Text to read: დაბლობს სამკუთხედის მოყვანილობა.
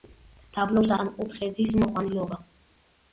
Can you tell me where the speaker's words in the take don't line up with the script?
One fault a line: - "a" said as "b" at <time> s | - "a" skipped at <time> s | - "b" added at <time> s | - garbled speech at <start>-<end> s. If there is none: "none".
none